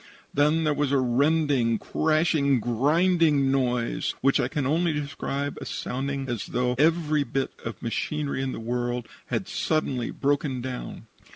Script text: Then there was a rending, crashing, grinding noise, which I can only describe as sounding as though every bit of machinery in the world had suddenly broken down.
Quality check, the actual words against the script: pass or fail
pass